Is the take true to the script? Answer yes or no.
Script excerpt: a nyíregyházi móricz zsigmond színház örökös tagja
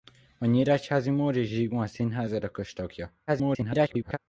no